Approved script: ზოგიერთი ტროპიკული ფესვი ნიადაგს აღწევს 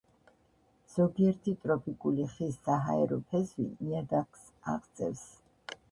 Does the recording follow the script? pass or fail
fail